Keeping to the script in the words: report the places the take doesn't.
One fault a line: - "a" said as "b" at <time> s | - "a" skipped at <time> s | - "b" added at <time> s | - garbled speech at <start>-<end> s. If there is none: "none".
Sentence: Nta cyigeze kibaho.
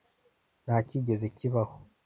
none